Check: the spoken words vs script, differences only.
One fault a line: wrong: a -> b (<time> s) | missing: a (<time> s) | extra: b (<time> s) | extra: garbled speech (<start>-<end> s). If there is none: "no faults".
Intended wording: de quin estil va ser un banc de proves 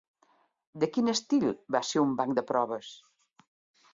no faults